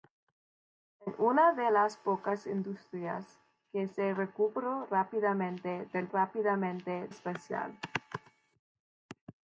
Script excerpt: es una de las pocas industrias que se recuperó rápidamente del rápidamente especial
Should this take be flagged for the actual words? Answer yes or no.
no